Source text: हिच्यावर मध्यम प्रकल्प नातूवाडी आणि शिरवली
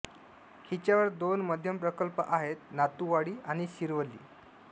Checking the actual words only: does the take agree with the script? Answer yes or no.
no